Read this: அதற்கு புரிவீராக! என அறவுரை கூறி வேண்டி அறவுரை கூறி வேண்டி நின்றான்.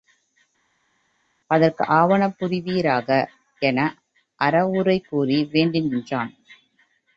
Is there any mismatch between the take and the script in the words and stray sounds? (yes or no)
yes